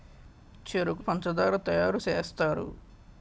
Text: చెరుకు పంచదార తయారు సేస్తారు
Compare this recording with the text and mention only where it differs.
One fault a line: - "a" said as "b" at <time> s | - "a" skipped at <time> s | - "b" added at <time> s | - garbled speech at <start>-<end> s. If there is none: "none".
none